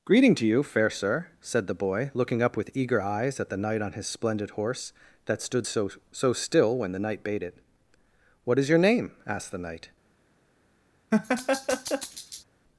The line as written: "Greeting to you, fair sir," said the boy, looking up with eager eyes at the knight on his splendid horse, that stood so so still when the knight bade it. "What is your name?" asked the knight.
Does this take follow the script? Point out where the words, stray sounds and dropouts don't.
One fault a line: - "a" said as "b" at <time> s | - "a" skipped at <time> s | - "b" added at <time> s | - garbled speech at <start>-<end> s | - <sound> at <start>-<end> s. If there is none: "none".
- laugh at 11.1-12.4 s